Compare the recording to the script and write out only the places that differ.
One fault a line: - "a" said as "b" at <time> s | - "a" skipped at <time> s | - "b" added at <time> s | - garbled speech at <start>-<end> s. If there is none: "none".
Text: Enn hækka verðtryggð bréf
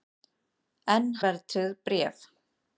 - "hækka" skipped at 1.1 s